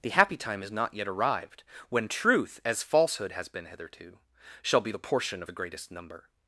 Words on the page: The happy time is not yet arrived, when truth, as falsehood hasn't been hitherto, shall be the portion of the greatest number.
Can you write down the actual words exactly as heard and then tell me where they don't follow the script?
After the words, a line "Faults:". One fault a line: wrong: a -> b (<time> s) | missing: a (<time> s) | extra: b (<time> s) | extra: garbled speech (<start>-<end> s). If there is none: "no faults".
The happy time is not yet arrived, when truth, as falsehood has been hitherto, shall be the portion of the greatest number.
Faults:
wrong: hasn't -> has (3.3 s)